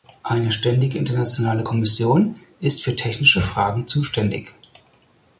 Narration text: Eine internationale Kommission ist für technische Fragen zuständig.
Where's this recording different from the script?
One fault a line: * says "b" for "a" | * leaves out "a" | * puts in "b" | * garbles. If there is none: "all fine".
* puts in "ständige"